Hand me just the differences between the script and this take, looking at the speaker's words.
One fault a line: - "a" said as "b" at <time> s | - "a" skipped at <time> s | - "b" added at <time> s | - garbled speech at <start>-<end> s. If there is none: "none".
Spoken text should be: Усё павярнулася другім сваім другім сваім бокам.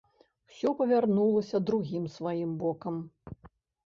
- "другім сваім" skipped at 2.6 s